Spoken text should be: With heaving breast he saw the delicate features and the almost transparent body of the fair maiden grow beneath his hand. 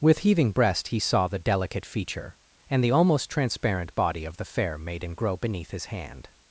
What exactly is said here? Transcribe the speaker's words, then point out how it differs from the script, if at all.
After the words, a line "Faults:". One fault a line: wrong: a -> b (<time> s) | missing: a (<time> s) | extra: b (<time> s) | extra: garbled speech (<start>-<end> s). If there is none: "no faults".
With heaving breast he saw the delicate feature and the almost transparent body of the fair maiden grow beneath his hand.
Faults:
wrong: features -> feature (1.9 s)